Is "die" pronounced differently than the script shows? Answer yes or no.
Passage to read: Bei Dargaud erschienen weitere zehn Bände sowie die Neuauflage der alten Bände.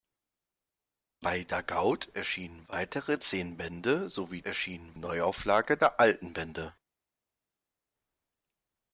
yes